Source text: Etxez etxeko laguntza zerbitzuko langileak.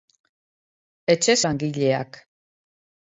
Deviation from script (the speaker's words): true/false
true